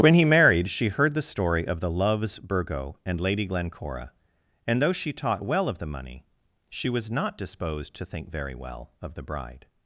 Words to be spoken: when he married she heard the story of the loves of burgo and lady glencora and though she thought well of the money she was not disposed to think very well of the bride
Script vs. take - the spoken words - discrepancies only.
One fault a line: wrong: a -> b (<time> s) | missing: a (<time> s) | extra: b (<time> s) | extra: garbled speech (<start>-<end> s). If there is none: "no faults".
missing: of (2.4 s)
wrong: thought -> taught (5.1 s)